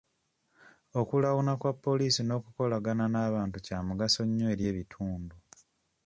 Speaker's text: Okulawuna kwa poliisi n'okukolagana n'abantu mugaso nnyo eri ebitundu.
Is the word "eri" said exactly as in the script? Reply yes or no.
yes